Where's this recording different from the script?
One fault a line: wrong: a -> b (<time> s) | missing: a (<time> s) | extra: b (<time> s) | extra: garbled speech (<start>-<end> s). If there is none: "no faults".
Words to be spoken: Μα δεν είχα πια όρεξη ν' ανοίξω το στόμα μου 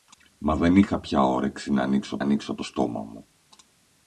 extra: ανοίξω (2.2 s)